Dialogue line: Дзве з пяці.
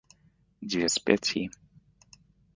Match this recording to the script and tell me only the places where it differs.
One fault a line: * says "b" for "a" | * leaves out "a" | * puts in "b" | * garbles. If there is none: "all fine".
all fine